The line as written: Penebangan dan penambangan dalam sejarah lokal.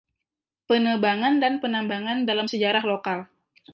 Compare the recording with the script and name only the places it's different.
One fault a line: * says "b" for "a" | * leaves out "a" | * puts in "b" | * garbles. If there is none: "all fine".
all fine